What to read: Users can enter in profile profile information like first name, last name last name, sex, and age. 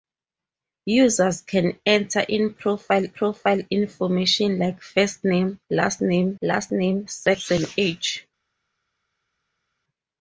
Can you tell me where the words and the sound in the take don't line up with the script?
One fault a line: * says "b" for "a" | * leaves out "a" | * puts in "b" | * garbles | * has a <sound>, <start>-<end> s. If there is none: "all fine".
all fine